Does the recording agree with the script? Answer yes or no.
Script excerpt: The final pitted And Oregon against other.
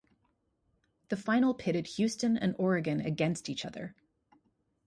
no